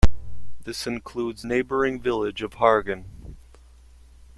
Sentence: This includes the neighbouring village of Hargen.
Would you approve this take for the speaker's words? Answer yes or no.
no